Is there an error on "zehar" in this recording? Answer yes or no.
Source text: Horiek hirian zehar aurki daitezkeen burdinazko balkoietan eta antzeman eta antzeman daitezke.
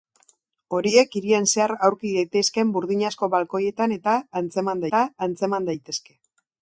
no